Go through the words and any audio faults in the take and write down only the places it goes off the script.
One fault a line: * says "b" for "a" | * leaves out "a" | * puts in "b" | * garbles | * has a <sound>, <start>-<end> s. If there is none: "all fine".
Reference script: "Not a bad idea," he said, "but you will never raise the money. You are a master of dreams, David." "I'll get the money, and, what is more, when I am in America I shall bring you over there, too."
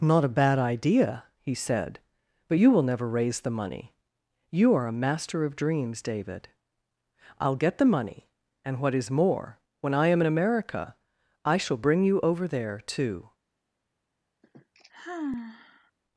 * has a sigh, 14.4-15.9 s